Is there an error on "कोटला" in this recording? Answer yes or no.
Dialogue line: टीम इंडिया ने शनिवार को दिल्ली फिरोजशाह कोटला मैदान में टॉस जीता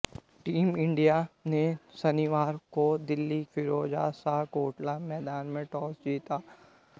no